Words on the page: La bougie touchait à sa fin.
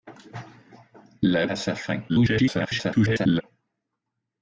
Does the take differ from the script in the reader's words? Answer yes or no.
yes